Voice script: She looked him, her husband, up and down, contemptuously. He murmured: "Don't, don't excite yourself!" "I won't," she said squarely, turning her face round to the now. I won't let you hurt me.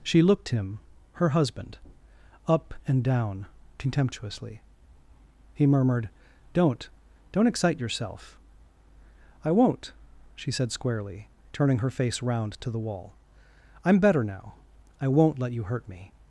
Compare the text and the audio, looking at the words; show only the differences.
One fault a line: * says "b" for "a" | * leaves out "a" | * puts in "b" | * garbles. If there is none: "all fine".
* puts in "wall I'm better"